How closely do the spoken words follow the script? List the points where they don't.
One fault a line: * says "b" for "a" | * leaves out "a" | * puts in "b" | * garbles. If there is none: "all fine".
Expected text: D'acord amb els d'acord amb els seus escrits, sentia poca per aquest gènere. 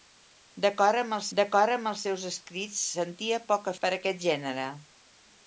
all fine